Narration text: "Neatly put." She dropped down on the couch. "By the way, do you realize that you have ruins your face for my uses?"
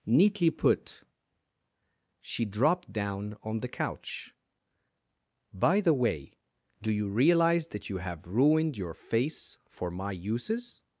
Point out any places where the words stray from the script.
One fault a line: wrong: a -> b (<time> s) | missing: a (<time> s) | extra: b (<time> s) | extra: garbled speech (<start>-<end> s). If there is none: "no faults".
wrong: ruins -> ruined (8.3 s)